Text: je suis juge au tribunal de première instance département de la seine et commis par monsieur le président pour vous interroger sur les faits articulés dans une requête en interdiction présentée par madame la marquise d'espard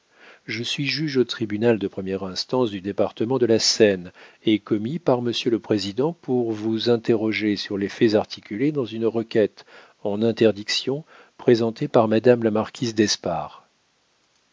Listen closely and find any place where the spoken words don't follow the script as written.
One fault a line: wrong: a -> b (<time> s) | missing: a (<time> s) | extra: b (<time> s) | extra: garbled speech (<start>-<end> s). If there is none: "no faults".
extra: du (2.7 s)